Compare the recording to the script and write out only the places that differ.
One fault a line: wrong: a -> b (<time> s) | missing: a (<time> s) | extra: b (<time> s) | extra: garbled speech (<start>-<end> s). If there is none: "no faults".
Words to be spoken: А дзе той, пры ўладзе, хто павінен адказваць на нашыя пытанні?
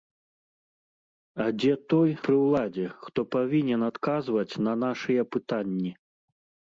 no faults